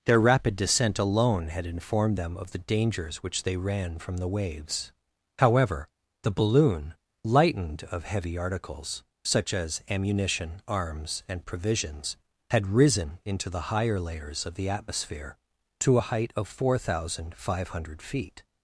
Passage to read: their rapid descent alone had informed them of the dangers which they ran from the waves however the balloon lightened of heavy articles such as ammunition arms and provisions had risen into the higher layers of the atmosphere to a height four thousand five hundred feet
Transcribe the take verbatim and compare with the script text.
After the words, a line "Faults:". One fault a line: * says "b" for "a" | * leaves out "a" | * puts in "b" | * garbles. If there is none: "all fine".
their rapid descent alone had informed them of the dangers which they ran from the waves however the balloon lightened of heavy articles such as ammunition arms and provisions had risen into the higher layers of the atmosphere to a height of four thousand five hundred feet
Faults:
* puts in "of"